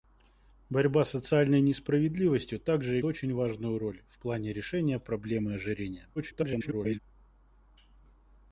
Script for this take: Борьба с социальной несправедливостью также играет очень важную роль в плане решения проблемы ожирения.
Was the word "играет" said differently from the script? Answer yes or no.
yes